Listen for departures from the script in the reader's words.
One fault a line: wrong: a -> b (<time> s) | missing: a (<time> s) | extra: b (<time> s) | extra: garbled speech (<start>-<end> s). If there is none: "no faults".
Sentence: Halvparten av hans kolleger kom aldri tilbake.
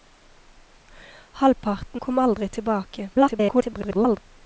missing: av hans kolleger (2.0 s)
extra: garbled speech (3.1-4.2 s)